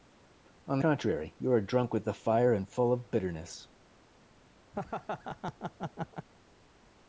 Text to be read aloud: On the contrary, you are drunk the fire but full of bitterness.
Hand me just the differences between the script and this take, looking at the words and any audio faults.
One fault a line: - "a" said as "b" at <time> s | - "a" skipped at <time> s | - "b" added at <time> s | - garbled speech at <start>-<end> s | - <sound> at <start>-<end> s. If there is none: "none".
- "with" added at 1.9 s
- "but" said as "and" at 2.5 s
- laugh at 4.7-6.3 s